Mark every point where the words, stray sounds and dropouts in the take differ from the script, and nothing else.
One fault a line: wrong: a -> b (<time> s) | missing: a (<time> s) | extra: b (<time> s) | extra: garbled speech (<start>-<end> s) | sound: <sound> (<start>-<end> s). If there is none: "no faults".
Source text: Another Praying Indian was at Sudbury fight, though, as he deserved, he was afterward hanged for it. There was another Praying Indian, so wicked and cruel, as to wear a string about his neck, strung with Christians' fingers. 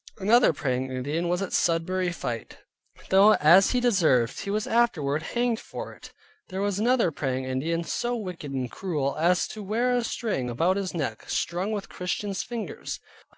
no faults